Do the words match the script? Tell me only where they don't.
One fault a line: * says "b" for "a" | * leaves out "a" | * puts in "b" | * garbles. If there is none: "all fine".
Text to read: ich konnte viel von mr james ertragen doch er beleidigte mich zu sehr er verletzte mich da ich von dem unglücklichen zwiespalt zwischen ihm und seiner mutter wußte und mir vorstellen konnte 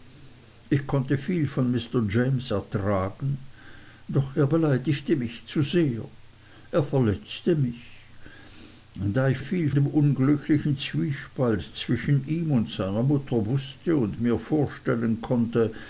* says "viel" for "von"